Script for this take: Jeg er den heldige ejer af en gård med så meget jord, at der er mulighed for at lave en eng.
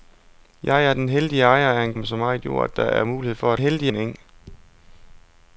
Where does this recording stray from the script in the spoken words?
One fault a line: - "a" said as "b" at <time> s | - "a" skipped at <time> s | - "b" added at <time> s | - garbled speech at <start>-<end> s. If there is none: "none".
- "gård" skipped at 1.9 s
- "lave" said as "heldige" at 3.6 s